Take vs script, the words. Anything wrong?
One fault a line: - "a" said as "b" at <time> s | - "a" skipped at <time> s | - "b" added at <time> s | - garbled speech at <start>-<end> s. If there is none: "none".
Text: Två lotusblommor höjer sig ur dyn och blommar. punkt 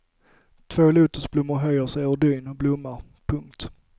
none